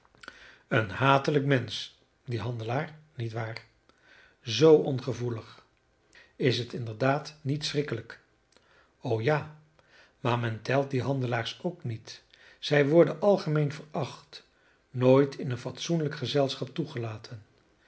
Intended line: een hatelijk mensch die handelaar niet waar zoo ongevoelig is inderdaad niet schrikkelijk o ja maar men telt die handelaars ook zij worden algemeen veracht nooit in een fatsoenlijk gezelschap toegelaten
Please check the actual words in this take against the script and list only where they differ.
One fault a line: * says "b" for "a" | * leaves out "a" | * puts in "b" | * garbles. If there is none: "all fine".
* puts in "het"
* puts in "niet"